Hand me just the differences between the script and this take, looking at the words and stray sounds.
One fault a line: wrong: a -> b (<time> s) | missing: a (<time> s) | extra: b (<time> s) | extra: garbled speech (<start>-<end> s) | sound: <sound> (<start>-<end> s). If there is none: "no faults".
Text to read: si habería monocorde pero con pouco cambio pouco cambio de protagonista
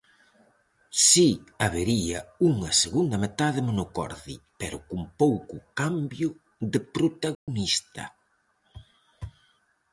extra: unha segunda metade (2.5 s)
missing: pouco cambio (6.3 s)
sound: dropout (7.3-7.5 s)